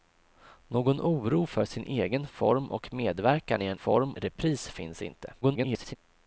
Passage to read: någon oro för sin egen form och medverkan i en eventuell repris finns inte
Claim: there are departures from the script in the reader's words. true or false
true